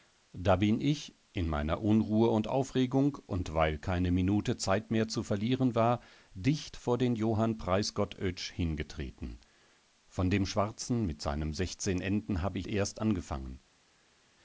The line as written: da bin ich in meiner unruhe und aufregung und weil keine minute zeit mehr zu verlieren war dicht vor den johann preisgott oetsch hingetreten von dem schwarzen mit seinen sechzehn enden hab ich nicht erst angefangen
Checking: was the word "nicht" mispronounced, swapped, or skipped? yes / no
yes